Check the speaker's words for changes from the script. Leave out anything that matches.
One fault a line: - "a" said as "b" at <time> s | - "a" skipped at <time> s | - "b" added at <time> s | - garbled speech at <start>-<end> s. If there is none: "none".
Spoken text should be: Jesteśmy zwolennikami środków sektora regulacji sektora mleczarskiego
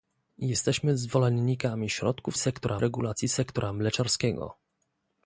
none